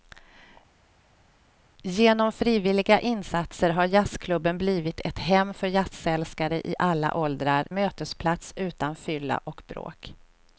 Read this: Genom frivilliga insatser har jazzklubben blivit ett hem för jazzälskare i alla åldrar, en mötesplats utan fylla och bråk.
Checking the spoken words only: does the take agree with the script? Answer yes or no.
no